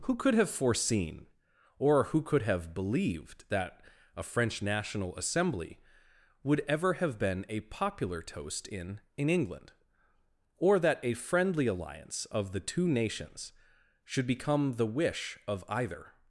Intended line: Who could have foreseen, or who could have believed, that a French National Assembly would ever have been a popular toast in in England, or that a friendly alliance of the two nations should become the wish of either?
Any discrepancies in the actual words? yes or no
no